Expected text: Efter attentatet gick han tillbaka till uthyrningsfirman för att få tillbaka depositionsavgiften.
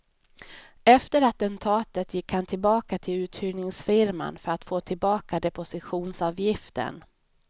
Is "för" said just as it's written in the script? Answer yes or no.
yes